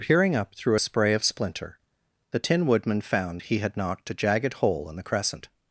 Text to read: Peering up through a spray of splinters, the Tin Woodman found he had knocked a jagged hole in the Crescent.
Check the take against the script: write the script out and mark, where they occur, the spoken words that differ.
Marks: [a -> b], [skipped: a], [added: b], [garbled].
Peering up through a spray of [splinters, -> splinter] the Tin Woodman found he had knocked a jagged hole in the Crescent.